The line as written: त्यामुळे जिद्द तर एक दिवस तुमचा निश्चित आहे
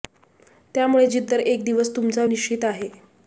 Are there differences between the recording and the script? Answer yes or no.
no